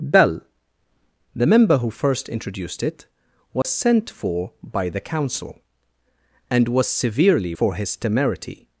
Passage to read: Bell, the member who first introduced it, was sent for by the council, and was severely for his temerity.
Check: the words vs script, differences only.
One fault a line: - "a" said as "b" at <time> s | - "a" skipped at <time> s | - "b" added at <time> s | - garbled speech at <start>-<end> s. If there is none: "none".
none